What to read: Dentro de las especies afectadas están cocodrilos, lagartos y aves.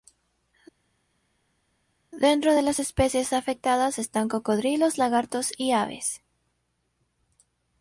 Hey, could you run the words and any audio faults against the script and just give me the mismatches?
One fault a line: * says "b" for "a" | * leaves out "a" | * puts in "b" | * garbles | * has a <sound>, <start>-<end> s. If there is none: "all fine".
all fine